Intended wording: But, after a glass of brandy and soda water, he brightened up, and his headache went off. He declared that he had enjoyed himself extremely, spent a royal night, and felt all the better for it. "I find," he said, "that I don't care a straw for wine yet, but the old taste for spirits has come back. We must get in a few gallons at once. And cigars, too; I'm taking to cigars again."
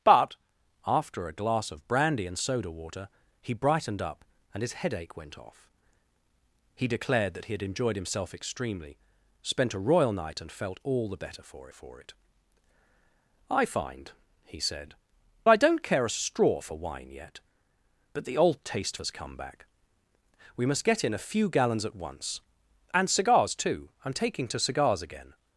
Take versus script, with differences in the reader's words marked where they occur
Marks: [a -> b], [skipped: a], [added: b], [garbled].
But, after a glass of brandy and soda water, he brightened up, and his headache went off. He declared that he had enjoyed himself extremely, spent a royal night, and felt all the better for [added: for] it. "I find," he said, [skipped: "that] I don't care a straw for wine yet, but the old taste [skipped: for spirits] has come back. We must get in a few gallons at once. And cigars, too; I'm taking to cigars again."